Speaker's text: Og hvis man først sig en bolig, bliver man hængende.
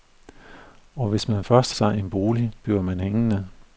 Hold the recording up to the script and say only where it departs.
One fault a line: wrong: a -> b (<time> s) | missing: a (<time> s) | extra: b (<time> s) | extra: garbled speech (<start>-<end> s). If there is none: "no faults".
no faults